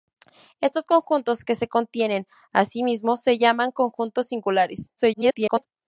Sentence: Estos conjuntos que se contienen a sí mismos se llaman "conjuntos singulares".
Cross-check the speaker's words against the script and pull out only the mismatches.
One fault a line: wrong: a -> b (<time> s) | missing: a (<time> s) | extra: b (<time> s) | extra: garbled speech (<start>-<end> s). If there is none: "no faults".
extra: garbled speech (5.0-5.7 s)